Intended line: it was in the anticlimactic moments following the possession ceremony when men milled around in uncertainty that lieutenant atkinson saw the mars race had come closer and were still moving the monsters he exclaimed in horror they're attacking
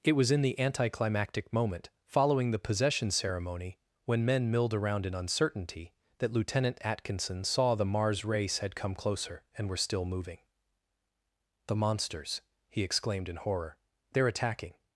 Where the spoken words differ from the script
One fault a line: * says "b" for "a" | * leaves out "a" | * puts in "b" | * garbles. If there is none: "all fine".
* says "moment" for "moments"